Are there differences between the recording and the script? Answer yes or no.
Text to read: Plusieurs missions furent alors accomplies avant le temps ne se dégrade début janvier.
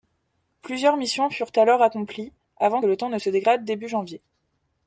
no